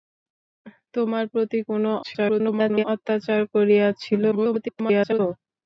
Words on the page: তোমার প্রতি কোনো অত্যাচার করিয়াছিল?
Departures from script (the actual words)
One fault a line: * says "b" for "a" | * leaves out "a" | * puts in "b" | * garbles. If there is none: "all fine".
* garbles
* garbles